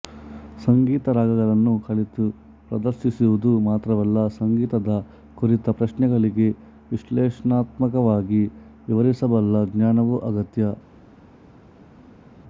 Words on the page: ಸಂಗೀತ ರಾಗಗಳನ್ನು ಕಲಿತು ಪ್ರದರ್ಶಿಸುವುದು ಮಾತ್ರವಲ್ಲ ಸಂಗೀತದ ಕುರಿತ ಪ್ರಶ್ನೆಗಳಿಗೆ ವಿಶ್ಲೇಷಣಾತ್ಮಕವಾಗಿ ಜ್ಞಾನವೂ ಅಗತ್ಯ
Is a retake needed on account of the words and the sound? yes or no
yes